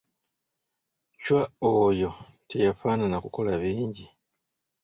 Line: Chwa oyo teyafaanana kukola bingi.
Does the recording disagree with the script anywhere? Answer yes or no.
no